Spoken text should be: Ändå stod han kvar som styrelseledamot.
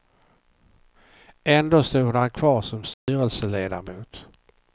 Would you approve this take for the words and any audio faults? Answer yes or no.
no